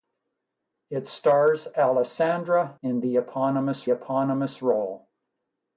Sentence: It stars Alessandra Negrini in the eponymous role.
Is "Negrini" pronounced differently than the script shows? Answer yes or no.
yes